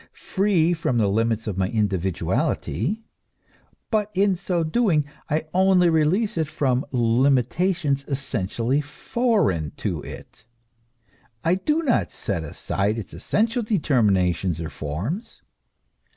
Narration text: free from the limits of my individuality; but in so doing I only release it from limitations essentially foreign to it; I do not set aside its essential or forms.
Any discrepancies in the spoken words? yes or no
yes